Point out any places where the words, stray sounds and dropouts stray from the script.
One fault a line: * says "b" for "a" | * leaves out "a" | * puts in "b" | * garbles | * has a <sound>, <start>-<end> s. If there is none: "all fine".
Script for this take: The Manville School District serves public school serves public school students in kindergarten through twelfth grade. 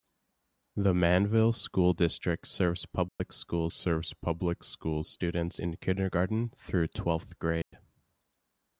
* has a dropout, 3.1-3.2 s
* has a dropout, 7.6-7.7 s